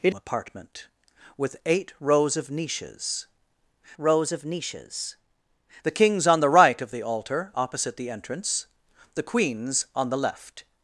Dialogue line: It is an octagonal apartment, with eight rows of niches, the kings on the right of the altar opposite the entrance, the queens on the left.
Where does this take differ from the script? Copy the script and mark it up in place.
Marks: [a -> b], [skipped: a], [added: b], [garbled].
It [is an octagonal apartment, with eight -> apartment with eight rows of niches] rows of niches, the kings on the right of the altar opposite the entrance, the queens on the left.